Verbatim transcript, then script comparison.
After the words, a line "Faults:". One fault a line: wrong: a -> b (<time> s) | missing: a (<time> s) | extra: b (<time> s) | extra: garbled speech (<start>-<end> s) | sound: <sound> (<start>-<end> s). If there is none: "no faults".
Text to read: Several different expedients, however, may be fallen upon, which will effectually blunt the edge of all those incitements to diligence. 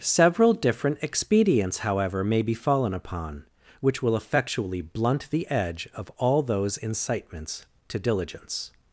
Several different expedients, however, may be fallen upon, which will effectually blunt the edge of all those incitements to diligence.
Faults:
no faults